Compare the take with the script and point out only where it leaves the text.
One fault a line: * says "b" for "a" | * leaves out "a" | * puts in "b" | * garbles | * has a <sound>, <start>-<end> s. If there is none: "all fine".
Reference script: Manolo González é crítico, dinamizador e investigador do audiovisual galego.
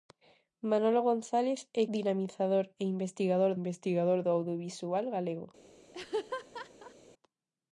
* leaves out "crítico"
* puts in "investigador"
* has a laugh, 5.9-6.9 s